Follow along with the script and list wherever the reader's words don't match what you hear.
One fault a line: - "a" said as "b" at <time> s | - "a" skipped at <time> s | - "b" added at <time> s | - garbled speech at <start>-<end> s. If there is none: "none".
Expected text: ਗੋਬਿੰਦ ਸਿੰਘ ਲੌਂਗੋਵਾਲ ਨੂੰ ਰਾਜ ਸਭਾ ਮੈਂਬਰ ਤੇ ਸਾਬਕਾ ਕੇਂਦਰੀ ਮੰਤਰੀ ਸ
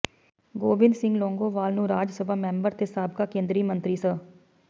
none